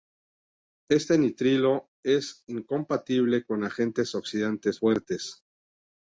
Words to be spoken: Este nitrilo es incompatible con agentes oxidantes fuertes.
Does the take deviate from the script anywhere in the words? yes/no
no